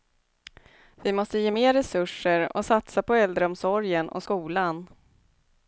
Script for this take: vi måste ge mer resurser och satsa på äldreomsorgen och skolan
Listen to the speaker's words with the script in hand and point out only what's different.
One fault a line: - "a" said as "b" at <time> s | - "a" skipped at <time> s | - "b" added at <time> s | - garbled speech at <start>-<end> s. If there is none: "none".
none